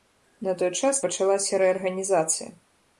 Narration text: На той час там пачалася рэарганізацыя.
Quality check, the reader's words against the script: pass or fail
fail